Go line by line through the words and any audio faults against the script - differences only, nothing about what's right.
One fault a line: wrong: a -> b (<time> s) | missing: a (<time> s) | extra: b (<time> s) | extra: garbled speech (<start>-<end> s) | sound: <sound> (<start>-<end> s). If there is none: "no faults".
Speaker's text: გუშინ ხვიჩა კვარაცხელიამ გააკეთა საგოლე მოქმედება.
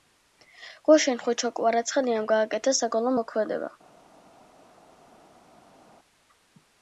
no faults